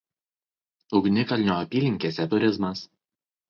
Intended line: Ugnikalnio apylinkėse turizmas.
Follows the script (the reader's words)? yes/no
yes